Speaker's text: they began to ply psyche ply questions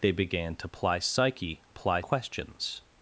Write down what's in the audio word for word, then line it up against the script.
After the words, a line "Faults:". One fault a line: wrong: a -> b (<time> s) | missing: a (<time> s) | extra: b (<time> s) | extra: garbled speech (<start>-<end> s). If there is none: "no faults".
they began to ply psyche ply questions
Faults:
no faults